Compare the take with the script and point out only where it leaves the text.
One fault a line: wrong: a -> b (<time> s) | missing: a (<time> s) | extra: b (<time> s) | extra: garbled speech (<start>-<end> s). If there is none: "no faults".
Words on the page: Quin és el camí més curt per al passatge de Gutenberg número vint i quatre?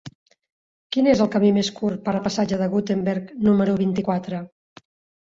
no faults